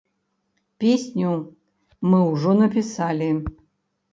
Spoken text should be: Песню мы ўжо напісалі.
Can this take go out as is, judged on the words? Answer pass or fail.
pass